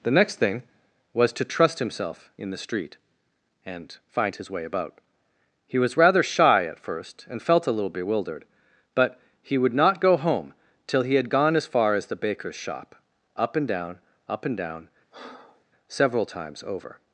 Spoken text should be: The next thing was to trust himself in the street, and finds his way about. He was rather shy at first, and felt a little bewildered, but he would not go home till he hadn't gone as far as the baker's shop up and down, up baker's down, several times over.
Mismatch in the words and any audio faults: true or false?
true